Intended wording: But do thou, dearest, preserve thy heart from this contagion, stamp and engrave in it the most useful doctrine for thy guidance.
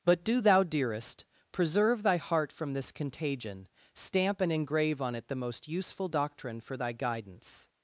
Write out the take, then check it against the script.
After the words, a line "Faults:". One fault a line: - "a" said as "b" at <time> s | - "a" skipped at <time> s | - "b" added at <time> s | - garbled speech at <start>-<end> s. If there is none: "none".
But do thou, dearest, preserve thy heart from this contagion, stamp and engrave on it the most useful doctrine for thy guidance.
Faults:
- "in" said as "on" at 5.0 s